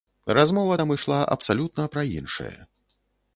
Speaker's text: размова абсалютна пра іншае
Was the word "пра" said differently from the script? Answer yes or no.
no